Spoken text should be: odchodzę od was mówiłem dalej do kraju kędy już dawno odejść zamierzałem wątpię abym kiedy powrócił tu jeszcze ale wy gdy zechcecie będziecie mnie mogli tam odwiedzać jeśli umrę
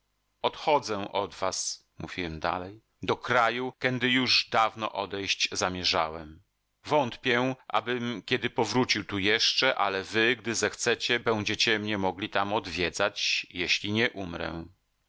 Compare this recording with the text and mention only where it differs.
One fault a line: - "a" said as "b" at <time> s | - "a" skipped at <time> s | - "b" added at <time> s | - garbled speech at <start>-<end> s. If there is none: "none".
- "nie" added at 13.9 s